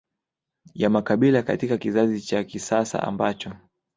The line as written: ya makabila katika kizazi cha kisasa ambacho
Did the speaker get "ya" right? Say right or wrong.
right